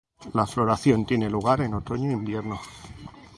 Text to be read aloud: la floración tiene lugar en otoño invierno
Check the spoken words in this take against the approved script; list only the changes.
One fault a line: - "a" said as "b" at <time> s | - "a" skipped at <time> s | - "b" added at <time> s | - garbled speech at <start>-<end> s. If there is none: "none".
none